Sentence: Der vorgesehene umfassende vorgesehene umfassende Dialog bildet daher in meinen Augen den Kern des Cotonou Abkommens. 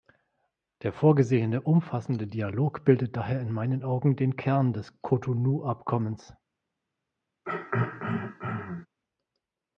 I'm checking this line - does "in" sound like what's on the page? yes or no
yes